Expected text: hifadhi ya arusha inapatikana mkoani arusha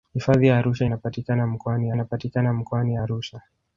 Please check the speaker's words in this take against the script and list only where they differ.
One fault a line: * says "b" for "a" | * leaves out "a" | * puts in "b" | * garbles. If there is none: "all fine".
* puts in "inapatikana mkoani"